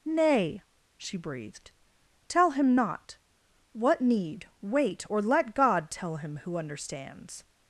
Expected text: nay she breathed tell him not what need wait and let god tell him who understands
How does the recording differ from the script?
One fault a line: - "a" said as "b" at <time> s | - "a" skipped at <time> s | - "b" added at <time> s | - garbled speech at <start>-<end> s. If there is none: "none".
- "and" said as "or" at 5.1 s